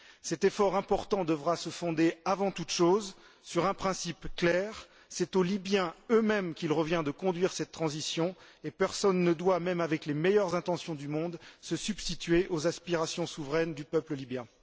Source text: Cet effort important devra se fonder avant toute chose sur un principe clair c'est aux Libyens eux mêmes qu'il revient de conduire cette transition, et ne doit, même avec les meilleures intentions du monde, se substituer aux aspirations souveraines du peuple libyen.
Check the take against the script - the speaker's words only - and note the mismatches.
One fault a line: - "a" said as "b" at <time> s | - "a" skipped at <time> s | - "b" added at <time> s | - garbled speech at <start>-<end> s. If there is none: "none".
- "personne" added at 8.7 s